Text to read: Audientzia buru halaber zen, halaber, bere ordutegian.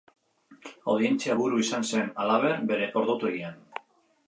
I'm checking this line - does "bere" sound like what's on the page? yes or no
yes